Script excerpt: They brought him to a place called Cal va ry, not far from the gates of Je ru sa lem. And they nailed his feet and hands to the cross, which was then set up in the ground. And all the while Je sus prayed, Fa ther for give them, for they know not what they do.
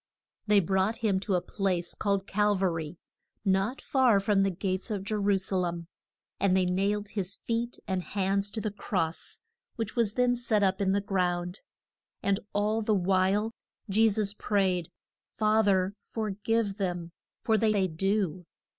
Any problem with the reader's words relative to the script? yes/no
yes